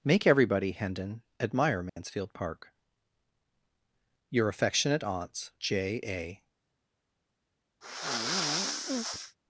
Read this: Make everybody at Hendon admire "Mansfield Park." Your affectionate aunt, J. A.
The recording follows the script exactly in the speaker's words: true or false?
false